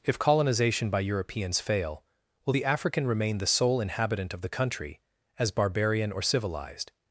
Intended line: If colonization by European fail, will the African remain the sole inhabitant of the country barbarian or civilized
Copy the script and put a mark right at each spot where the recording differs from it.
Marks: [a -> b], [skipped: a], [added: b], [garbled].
If colonization by [European -> Europeans] fail, will the African remain the sole inhabitant of the country [added: as] barbarian or civilized